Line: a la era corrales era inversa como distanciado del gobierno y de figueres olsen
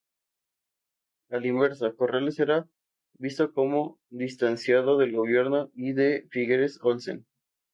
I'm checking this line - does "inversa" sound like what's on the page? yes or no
no